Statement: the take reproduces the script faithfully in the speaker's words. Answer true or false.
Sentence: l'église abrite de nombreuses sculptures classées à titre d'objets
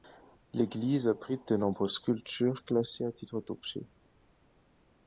true